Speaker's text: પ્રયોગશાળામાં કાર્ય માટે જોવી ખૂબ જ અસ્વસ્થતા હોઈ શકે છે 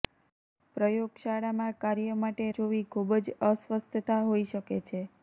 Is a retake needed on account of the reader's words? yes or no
no